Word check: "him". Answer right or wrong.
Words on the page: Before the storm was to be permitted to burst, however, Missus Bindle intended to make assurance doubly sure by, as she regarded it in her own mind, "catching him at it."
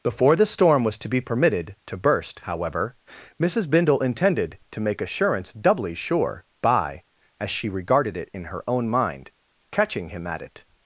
right